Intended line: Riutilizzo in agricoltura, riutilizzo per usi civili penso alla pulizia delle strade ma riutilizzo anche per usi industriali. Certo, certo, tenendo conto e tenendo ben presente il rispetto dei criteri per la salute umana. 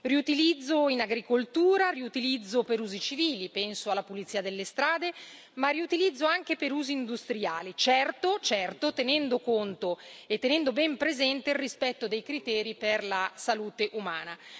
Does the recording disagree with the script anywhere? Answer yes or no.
no